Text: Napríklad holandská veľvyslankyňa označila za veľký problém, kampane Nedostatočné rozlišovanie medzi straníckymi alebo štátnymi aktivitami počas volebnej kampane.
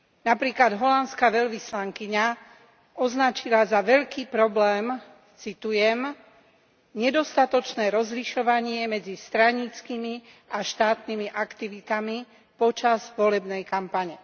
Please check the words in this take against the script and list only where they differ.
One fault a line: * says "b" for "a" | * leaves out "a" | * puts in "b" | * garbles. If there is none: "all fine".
* says "citujem" for "kampane"
* says "a" for "alebo"